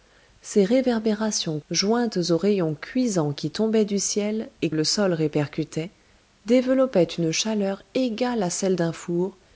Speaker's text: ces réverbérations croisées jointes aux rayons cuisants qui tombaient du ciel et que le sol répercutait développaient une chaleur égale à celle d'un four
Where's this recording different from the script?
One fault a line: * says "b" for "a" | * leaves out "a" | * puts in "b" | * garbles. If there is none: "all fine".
* leaves out "croisées"
* leaves out "que"